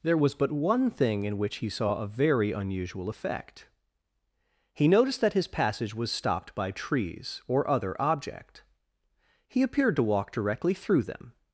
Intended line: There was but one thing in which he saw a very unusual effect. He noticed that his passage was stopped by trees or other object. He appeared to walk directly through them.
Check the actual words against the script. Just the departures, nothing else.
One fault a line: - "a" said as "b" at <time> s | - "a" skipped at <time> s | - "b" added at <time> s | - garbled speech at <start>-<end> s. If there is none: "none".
none